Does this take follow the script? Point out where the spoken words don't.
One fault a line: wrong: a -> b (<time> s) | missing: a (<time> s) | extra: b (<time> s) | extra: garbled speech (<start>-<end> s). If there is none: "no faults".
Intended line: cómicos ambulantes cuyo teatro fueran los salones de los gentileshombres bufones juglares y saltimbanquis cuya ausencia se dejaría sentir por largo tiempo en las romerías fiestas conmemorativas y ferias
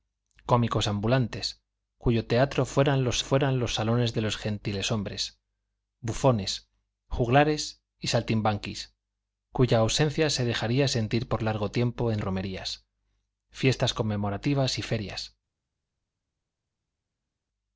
extra: fueran los (3.2 s)
missing: las (12.2 s)